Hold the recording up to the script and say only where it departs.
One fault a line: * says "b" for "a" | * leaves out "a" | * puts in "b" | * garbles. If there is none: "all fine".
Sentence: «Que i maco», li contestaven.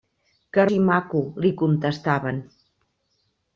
all fine